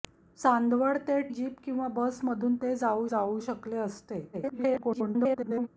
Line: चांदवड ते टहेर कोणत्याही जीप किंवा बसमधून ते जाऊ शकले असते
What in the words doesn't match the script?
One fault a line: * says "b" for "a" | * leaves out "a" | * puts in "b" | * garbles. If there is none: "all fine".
* leaves out "टहेर कोणत्याही"
* puts in "जाऊ"
* garbles